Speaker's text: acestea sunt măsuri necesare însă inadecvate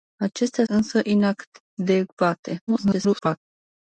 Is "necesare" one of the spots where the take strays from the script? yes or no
yes